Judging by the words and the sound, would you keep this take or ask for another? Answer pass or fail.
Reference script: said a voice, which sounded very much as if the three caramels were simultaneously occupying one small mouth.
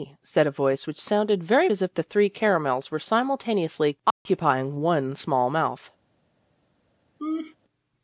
fail